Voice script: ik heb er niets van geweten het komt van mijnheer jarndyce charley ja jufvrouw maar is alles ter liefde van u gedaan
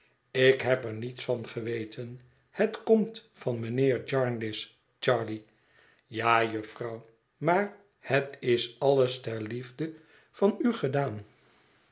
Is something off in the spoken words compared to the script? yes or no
yes